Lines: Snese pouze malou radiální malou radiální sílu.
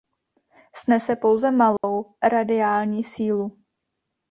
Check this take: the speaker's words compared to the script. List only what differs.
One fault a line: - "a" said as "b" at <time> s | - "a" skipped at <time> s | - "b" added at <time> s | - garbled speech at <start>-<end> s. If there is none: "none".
- "malou radiální" skipped at 3.0 s